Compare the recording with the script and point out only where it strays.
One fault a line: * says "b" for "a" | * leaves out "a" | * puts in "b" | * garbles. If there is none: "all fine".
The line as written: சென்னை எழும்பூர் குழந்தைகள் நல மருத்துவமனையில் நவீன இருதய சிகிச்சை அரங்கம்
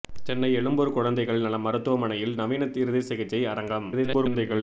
* garbles